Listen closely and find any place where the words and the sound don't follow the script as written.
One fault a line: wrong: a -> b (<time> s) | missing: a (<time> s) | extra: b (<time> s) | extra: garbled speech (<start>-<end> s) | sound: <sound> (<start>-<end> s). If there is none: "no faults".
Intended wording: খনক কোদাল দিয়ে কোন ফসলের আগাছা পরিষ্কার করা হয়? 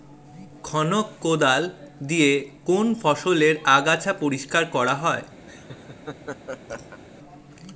sound: laugh (5.5-7.0 s)